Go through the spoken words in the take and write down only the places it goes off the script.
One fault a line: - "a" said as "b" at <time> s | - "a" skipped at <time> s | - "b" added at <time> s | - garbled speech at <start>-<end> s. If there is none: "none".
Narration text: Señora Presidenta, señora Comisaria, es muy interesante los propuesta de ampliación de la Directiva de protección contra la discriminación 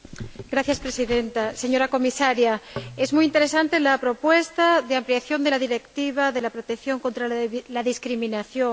- "los" said as "la" at 3.8 s